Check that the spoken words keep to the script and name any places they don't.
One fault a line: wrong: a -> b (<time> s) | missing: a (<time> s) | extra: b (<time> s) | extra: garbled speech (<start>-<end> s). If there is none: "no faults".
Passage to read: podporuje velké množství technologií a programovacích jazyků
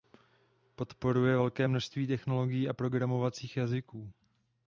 no faults